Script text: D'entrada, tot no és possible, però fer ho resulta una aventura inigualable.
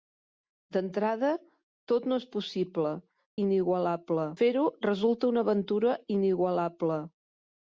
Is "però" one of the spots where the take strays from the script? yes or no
yes